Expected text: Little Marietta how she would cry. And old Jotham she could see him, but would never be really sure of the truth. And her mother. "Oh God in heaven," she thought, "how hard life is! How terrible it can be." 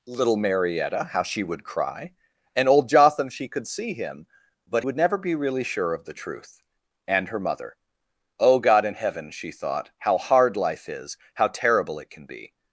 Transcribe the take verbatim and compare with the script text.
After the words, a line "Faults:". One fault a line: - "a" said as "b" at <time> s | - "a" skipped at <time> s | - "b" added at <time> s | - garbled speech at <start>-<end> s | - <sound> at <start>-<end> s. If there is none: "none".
Little Marietta how she would cry. And old Jotham she could see him, but would never be really sure of the truth. And her mother. "Oh God in heaven," she thought, "how hard life is! How terrible it can be."
Faults:
none